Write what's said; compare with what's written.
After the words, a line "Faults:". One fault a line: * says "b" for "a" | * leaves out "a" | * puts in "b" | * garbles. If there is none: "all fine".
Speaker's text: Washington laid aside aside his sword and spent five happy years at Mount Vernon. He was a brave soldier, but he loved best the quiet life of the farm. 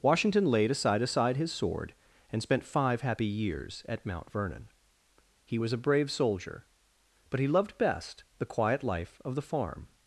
Washington laid aside aside his sword and spent five happy years at Mount Vernon. He was a brave soldier, but he loved best the quiet life of the farm.
Faults:
all fine